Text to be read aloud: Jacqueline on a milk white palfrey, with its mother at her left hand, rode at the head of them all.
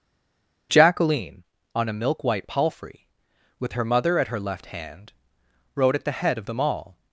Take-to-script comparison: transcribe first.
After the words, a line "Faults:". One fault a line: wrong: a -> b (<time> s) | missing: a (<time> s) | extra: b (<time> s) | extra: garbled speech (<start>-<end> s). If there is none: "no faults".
Jacqueline on a milk white palfrey, with her mother at her left hand, rode at the head of them all.
Faults:
wrong: its -> her (3.7 s)